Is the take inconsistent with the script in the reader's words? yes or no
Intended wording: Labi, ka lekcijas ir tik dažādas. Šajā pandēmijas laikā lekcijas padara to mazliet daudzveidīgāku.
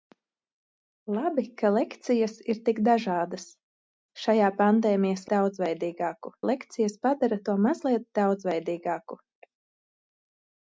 yes